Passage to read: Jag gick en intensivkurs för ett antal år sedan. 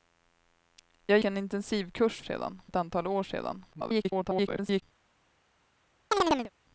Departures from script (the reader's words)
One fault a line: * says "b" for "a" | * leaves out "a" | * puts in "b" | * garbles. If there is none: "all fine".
* leaves out "gick"
* says "sedan" for "för"
* garbles